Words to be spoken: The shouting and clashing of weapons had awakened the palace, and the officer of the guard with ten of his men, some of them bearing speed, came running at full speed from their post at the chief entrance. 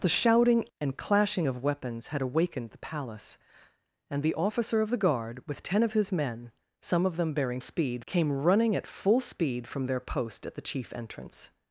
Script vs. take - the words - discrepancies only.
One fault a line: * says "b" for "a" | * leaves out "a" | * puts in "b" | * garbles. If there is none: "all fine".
all fine